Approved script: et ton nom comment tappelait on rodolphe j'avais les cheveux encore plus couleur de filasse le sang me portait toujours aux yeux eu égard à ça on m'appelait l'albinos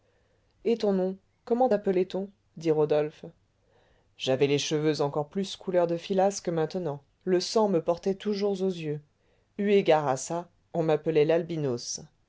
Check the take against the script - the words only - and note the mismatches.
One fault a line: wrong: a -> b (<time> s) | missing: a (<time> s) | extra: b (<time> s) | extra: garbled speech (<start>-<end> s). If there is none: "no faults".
extra: dit (2.6 s)
extra: que maintenant (6.4 s)